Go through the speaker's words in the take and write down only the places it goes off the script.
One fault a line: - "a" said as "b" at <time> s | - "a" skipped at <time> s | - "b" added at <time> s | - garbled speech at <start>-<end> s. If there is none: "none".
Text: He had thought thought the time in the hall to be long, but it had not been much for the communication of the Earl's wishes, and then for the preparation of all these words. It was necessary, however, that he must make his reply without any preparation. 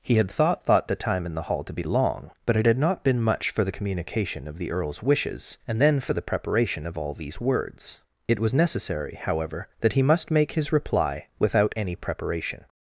none